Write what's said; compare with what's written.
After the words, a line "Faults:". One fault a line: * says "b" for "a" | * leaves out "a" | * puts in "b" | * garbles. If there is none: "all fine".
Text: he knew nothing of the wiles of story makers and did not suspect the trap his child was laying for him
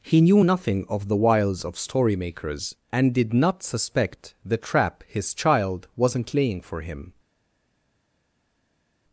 he knew nothing of the wiles of story makers and did not suspect the trap his child wasn't laying for him
Faults:
* says "wasn't" for "was"